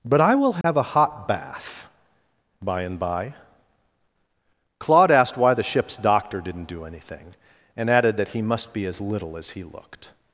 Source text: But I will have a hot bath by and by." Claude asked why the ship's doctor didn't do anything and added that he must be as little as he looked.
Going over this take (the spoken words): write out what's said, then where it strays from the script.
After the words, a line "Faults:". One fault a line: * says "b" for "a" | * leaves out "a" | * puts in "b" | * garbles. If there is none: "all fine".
But I will have a hot bath by and by." Claude asked why the ship's doctor didn't do anything and added that he must be as little as he looked.
Faults:
all fine